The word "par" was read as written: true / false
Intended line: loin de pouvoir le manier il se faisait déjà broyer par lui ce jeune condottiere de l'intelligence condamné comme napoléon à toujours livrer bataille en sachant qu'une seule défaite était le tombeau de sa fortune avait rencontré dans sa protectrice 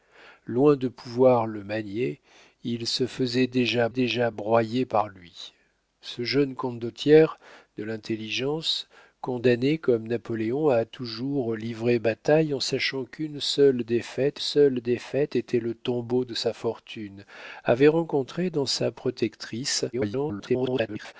true